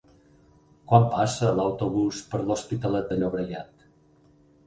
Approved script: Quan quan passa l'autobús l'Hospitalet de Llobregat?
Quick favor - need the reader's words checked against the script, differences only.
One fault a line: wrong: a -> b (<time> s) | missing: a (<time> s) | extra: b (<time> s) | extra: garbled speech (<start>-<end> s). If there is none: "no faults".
missing: quan (1.0 s)
extra: per (2.3 s)